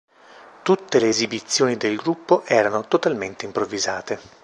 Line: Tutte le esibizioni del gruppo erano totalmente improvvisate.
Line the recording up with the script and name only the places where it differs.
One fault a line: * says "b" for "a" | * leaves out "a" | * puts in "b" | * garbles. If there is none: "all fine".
all fine